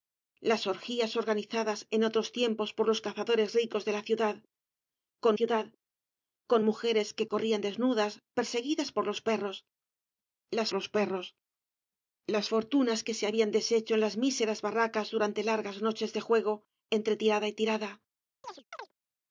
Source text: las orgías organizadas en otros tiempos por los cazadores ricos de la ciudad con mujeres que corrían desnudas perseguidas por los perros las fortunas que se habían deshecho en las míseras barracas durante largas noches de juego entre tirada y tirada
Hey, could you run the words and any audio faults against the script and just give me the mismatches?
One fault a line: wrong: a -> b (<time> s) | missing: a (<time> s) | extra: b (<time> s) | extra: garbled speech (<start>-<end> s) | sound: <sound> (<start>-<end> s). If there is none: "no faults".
extra: ciudad con (5.3 s)
extra: los perros las (10.7 s)
sound: chirp (18.4-18.9 s)